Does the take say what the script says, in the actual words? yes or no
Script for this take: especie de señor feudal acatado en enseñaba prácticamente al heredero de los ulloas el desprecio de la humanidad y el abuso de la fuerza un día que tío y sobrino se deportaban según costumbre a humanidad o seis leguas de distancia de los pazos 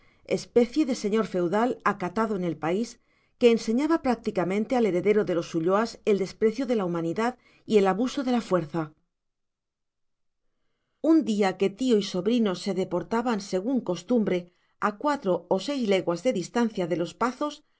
no